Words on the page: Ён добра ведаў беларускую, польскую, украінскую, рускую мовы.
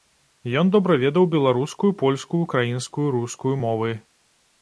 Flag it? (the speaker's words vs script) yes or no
no